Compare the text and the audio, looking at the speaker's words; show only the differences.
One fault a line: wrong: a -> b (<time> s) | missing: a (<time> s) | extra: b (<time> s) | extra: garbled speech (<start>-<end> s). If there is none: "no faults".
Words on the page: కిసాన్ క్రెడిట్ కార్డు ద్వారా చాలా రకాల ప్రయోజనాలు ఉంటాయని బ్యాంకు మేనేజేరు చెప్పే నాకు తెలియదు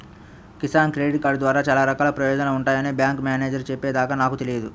extra: దాకా (3.9 s)